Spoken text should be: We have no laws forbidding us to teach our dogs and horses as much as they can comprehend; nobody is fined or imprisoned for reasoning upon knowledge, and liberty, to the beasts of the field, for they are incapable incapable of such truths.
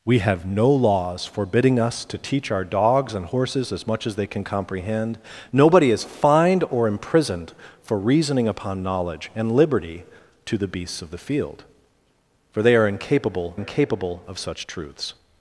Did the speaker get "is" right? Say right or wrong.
right